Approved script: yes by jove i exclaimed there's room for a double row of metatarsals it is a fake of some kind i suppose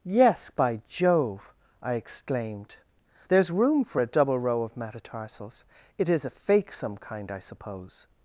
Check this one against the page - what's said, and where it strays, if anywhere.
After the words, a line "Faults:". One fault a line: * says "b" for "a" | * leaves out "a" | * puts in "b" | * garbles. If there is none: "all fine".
yes by jove i exclaimed there's room for a double row of metatarsals it is a fake some kind i suppose
Faults:
* leaves out "of"